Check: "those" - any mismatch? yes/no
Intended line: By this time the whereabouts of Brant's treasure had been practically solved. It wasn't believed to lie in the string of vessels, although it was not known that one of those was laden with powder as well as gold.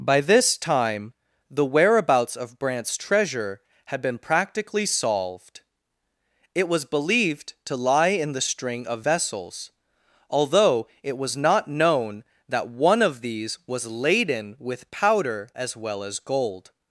yes